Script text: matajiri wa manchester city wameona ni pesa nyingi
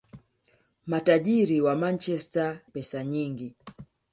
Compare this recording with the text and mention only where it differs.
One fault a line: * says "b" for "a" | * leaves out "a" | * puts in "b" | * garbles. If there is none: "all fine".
* leaves out "city wameona ni"